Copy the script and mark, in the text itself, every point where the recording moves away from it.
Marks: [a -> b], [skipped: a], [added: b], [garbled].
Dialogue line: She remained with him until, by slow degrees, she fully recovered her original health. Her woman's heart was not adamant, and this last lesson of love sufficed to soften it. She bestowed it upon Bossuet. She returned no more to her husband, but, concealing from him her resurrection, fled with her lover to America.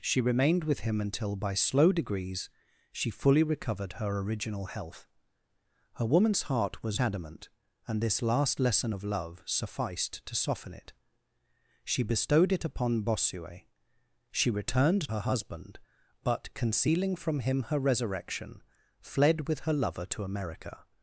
She remained with him until, by slow degrees, she fully recovered her original health. Her woman's heart was [skipped: not] adamant, and this last lesson of love sufficed to soften it. She bestowed it upon Bossuet. She returned [skipped: no more to] her husband, but, concealing from him her resurrection, fled with her lover to America.